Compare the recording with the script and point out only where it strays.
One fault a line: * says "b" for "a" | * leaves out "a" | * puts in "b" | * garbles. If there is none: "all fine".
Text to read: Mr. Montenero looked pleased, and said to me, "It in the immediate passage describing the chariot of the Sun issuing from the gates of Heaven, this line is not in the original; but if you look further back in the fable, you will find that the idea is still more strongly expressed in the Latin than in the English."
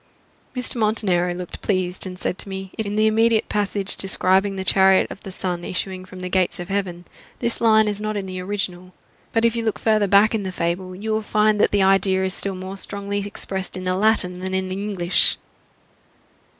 all fine